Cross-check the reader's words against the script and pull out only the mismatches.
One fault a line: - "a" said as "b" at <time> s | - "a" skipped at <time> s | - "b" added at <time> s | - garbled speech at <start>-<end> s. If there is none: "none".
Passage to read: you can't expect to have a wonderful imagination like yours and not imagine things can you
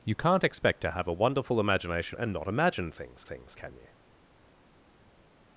- "like yours" skipped at 2.2 s
- "things" added at 3.2 s